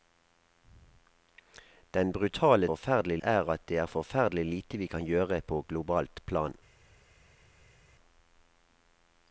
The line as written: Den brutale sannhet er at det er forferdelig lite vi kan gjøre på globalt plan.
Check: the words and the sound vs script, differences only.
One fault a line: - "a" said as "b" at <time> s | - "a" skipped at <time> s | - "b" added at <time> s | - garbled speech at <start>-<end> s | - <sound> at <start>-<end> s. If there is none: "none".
- "sannhet" said as "forferdelig" at 2.7 s